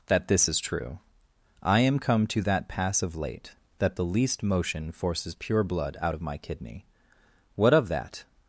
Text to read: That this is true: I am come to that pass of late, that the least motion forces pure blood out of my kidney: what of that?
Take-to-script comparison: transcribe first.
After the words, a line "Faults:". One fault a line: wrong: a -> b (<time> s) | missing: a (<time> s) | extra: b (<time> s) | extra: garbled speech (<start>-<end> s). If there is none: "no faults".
That this is true: I am come to that pass of late, that the least motion forces pure blood out of my kidney: what of that?
Faults:
no faults